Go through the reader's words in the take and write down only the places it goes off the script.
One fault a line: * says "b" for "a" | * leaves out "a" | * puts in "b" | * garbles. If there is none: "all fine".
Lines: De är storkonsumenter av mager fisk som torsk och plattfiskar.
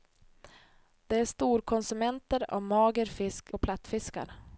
* leaves out "som torsk"